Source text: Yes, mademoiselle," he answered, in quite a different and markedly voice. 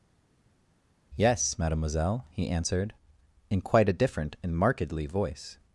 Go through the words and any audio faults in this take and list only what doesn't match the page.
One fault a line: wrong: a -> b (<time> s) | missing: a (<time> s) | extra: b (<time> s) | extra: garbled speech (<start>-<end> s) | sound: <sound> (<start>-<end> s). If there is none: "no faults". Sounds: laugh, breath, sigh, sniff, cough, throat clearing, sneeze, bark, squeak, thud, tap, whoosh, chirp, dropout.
no faults